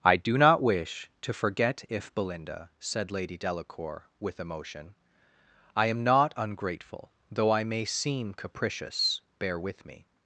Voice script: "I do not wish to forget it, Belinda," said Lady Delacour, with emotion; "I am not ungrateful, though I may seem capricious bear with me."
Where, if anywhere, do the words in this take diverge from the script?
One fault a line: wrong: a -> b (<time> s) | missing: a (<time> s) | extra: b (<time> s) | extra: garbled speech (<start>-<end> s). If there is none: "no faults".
wrong: it -> if (1.9 s)